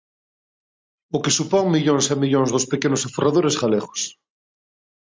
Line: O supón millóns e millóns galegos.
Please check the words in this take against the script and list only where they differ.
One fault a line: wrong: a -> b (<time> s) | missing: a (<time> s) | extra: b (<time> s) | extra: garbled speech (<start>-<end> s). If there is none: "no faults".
extra: que (1.2 s)
extra: dos pequenos aforradores (2.5 s)